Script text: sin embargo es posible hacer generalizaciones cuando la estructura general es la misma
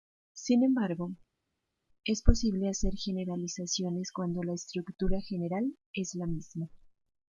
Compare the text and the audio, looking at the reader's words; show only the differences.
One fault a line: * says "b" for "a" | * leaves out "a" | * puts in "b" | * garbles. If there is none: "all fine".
all fine